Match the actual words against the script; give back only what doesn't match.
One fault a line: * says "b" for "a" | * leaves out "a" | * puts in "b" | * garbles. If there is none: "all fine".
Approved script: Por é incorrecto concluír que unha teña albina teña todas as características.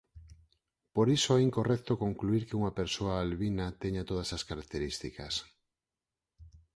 * puts in "iso"
* says "persoa" for "teña"